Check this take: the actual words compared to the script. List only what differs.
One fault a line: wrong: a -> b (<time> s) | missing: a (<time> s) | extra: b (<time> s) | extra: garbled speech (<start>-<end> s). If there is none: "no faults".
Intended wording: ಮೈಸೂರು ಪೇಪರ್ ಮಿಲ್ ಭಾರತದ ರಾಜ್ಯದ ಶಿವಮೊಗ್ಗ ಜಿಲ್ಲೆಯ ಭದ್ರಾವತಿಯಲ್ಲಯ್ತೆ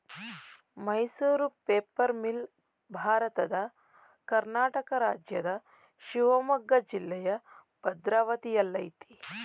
extra: ಕರ್ನಾಟಕ (4.3 s)